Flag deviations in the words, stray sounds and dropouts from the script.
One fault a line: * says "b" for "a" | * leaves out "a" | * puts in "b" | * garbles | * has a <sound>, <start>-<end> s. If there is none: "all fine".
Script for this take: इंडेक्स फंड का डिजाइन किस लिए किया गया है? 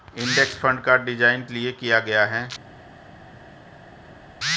* leaves out "किस"